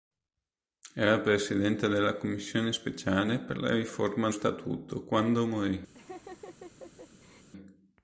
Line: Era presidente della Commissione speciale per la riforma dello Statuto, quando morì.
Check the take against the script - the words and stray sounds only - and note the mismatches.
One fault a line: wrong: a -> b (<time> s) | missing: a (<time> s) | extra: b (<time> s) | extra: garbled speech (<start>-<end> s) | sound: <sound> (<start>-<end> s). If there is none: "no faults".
missing: dello (4.3 s)
sound: laugh (5.9-7.5 s)